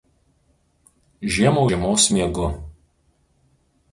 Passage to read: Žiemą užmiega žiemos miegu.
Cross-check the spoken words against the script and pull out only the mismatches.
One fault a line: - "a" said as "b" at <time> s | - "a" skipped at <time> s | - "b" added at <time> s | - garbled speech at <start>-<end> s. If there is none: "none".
- "užmiega" skipped at 1.7 s